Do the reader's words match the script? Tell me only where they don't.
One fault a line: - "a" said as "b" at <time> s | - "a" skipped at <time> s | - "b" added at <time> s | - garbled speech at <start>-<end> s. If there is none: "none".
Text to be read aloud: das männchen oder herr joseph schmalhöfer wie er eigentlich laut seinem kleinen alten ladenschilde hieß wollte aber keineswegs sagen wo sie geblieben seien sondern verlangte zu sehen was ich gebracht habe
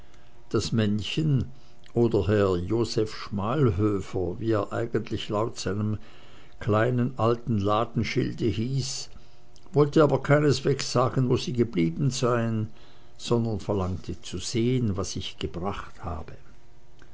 none